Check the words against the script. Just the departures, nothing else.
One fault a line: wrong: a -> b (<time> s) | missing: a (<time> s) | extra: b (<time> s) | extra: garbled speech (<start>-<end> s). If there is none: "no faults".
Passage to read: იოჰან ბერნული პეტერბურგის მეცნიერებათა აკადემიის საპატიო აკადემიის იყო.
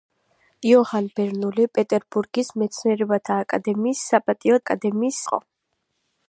no faults